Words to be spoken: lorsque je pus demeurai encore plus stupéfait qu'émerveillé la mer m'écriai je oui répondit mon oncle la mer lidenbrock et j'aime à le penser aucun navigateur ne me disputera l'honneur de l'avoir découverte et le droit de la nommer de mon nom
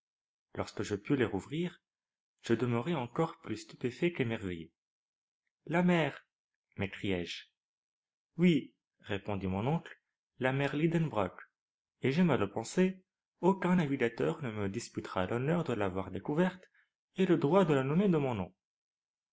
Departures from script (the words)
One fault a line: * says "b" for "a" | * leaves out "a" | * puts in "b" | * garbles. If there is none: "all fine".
* puts in "les rouvrir je"